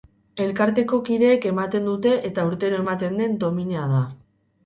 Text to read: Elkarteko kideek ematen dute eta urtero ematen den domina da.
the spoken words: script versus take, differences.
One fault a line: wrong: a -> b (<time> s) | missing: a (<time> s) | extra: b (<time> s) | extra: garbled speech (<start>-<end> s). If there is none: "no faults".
no faults